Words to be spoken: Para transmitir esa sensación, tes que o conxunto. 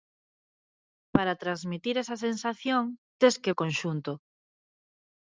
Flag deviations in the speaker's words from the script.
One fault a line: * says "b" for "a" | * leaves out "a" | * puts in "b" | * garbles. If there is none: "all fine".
all fine